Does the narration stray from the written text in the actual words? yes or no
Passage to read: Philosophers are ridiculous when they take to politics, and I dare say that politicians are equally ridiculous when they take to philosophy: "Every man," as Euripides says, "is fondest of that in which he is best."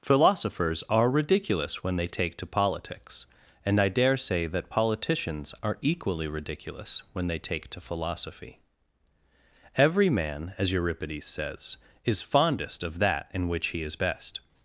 no